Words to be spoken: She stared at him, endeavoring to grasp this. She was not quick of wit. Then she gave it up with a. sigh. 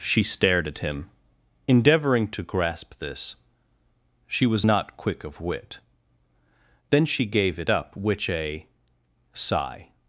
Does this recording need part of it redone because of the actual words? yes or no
yes